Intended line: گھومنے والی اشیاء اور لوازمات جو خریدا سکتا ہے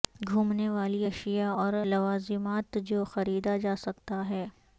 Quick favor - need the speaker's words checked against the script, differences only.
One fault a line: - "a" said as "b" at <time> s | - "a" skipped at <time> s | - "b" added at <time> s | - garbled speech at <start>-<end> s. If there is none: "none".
- "جا" added at 3.6 s